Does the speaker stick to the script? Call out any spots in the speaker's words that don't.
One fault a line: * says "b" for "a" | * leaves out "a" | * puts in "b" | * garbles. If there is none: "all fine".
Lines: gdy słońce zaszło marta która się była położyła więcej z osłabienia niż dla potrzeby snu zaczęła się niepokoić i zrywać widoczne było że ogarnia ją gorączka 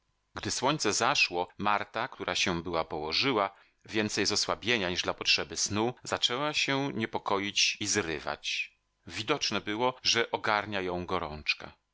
all fine